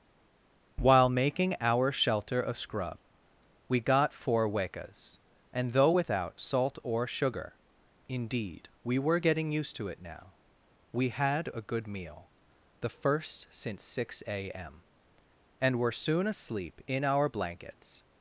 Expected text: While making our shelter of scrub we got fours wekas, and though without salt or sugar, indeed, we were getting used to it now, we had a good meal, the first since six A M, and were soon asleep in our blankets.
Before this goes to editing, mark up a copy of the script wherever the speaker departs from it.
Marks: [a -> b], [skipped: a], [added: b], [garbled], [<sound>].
While making our shelter of scrub we got [fours -> four] wekas, and though without salt or sugar, indeed, we were getting used to it now, we had a good meal, the first since six A M, and were soon asleep in our blankets.